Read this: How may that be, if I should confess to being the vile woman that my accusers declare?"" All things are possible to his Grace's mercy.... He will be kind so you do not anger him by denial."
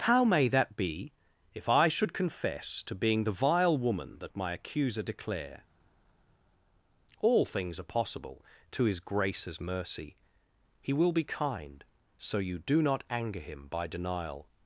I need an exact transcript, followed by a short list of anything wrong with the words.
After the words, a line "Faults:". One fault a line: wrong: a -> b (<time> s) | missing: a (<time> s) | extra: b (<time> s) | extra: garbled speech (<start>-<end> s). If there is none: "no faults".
How may that be, if I should confess to being the vile woman that my accuser declare?"" All things are possible to his Grace's mercy.... He will be kind so you do not anger him by denial."
Faults:
wrong: accusers -> accuser (4.5 s)